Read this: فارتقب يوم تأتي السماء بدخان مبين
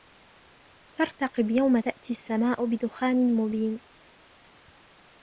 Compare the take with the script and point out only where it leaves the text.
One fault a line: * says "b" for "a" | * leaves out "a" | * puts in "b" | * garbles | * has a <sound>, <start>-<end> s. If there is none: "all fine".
all fine